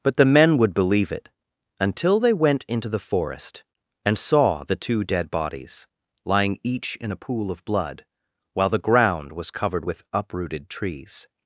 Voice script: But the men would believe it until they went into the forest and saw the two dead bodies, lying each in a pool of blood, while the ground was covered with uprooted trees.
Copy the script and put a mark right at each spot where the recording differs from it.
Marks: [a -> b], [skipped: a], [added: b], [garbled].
But the men would believe it until they went into the forest and saw the two dead bodies, lying each in a pool of blood, while the ground was covered with uprooted trees.